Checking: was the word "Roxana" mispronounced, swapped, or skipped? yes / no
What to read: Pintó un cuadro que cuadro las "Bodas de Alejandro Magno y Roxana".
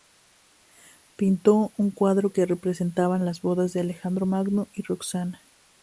no